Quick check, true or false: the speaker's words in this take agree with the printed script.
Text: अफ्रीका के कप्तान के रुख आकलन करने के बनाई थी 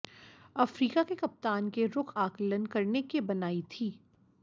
true